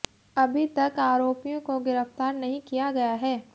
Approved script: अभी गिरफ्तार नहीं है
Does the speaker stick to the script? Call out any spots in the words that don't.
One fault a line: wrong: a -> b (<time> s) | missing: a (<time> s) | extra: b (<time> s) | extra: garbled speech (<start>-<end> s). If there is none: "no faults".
extra: तक आरोपियों को (0.7 s)
extra: किया गया (2.6 s)